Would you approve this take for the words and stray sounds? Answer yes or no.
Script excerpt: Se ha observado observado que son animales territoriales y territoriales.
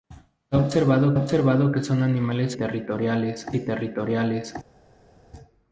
yes